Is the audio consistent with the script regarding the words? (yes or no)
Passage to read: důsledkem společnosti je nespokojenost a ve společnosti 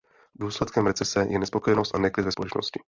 no